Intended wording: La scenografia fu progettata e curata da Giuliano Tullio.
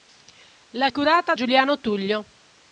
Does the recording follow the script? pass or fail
fail